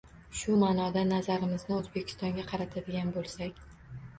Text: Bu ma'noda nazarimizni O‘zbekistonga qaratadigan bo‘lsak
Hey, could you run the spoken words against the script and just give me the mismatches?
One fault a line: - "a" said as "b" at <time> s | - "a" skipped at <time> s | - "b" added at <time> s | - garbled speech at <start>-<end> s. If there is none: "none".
- "Bu" said as "Shu" at 0.4 s